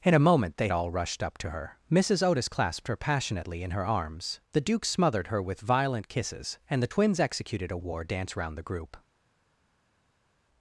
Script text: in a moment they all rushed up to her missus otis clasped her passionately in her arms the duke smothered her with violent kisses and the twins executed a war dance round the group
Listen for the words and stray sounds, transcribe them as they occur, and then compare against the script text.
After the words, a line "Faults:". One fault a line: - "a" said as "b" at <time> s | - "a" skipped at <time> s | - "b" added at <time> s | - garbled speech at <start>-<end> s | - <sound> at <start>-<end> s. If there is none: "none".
in a moment they all rushed up to her missus otis clasped her passionately in her arms the duke smothered her with violent kisses and the twins executed a war dance round the group
Faults:
none